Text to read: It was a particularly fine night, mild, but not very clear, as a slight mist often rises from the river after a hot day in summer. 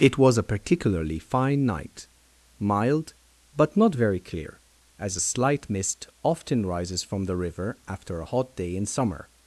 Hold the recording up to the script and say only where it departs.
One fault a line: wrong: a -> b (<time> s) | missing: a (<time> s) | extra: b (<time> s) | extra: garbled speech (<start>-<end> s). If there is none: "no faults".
no faults